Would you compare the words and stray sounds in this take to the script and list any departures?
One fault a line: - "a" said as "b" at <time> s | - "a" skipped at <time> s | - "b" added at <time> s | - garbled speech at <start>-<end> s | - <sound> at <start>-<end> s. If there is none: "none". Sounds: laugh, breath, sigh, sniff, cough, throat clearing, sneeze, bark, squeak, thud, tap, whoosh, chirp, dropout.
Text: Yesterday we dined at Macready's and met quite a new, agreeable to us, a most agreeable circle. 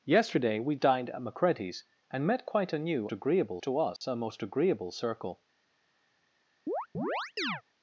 - dropout at 4.0-4.0 s
- chirp at 6.7-7.6 s